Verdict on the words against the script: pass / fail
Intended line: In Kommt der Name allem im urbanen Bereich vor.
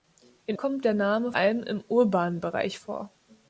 pass